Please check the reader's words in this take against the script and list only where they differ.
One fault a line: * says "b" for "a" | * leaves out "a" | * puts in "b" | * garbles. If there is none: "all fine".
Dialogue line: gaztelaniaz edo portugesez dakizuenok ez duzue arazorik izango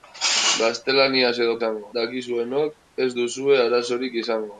* says "izango" for "portugesez"